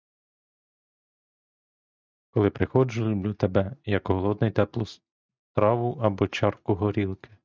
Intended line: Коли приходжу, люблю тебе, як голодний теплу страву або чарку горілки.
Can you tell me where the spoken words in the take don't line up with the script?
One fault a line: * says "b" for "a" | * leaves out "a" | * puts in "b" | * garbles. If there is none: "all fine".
all fine